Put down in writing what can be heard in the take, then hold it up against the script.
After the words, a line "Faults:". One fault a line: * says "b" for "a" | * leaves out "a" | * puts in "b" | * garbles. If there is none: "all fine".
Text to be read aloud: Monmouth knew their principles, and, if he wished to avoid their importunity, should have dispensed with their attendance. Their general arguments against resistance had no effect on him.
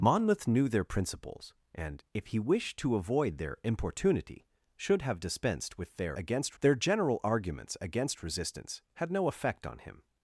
Monmouth knew their principles, and, if he wished to avoid their importunity, should have dispensed with their against. Their general arguments against resistance had no effect on him.
Faults:
* says "against" for "attendance"